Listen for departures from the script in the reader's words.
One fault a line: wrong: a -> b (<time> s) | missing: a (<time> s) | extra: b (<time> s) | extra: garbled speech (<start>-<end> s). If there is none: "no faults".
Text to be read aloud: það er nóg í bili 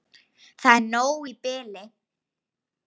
no faults